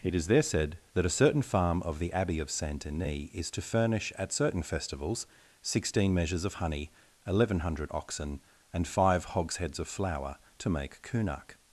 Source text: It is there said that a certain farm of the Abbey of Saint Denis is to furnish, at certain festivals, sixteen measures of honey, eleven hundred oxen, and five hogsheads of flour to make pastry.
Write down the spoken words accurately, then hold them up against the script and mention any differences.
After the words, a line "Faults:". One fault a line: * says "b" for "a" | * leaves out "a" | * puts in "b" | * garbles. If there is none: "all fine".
It is there said that a certain farm of the Abbey of Saint Denis is to furnish, at certain festivals, sixteen measures of honey, eleven hundred oxen, and five hogsheads of flour to make kunak.
Faults:
* says "kunak" for "pastry"